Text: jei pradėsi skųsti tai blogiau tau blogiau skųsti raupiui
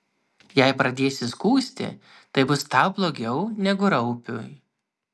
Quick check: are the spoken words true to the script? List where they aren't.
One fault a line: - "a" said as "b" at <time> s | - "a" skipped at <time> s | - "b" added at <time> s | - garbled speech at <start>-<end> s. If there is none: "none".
- "blogiau" said as "bus" at 2.5 s
- "skųsti" said as "negu" at 3.7 s